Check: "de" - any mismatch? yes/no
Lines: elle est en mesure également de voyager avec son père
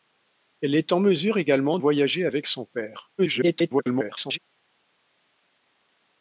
yes